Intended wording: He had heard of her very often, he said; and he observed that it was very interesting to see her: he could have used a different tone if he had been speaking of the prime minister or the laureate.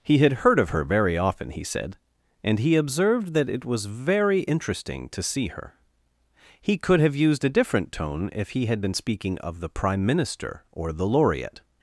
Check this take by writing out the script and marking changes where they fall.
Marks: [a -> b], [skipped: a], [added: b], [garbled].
He had heard of her very often, he said; and he observed that it was very interesting to see her: he could have used a different tone if he had been speaking of the prime minister or the laureate.